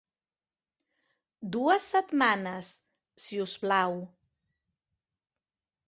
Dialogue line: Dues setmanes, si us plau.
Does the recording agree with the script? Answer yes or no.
yes